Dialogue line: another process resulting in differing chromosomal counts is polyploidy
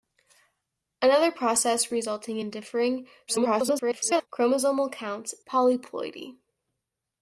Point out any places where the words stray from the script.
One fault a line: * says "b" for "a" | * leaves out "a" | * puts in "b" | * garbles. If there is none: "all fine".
* garbles
* leaves out "is"